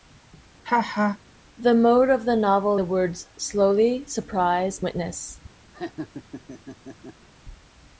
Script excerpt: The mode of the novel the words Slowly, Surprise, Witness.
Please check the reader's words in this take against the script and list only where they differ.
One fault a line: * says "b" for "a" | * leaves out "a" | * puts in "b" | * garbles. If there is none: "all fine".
all fine